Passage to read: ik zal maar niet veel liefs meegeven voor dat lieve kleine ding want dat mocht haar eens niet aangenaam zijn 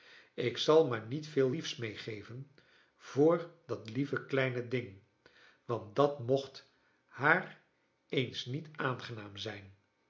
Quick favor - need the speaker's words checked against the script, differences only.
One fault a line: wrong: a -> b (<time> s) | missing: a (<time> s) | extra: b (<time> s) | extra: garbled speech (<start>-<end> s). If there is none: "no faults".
no faults